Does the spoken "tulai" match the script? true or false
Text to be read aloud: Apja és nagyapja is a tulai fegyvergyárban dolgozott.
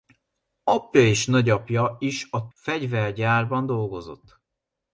false